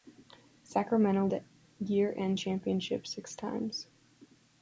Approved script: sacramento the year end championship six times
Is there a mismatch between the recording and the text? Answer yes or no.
no